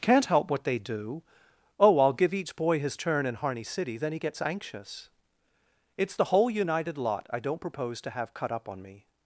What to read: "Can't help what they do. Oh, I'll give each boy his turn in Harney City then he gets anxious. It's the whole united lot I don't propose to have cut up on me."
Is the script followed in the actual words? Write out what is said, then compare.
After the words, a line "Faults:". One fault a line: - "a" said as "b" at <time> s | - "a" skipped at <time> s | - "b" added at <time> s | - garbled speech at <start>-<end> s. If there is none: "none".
"Can't help what they do. Oh, I'll give each boy his turn in Harney City then he gets anxious. It's the whole united lot I don't propose to have cut up on me."
Faults:
none